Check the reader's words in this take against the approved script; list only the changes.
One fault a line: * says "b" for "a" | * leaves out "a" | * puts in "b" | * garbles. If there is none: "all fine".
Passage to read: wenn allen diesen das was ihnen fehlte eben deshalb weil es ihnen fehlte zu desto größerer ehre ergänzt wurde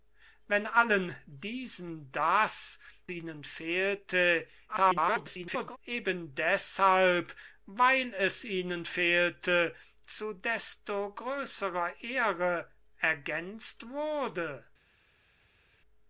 * leaves out "was"
* garbles